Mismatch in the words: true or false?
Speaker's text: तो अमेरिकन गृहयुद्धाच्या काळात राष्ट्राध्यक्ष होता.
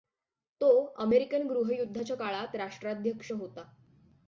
false